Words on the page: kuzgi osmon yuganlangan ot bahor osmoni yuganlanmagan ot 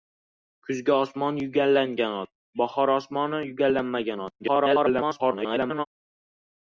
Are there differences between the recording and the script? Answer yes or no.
yes